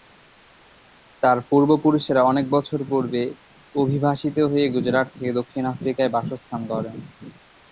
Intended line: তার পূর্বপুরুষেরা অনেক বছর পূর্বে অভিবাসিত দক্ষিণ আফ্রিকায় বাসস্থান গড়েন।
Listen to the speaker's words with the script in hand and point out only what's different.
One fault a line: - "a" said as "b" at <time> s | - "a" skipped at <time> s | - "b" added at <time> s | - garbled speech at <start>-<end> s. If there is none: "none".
- "হয়ে গুজরাট থেকে" added at 4.5 s